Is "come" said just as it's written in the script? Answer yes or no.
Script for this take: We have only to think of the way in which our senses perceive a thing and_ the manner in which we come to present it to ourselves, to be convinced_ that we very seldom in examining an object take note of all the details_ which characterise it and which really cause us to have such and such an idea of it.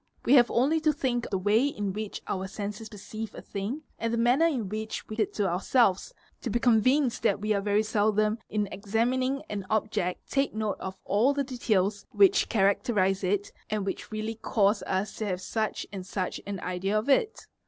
no